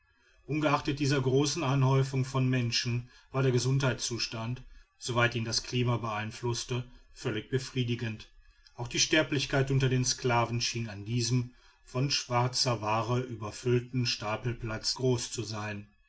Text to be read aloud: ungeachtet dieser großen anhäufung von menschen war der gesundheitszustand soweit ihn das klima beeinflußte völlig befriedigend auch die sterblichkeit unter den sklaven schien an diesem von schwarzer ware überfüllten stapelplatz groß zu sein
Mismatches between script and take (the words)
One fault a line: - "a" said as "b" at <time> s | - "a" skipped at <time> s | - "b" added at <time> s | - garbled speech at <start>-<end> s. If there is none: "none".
none